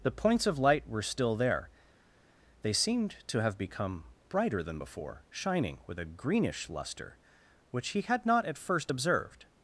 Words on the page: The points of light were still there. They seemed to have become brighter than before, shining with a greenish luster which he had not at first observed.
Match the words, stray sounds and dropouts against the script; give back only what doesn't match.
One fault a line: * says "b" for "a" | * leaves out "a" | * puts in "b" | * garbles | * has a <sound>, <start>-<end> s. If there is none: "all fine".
all fine